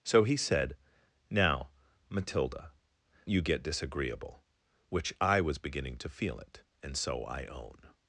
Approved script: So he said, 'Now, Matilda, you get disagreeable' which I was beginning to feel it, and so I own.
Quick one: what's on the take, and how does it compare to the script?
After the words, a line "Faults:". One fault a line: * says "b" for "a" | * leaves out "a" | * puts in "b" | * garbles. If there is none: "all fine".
So he said, 'Now, Matilda, you get disagreeable' which I was beginning to feel it, and so I own.
Faults:
all fine